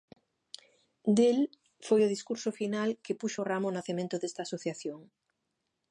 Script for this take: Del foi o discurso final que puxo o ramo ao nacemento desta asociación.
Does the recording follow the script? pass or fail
pass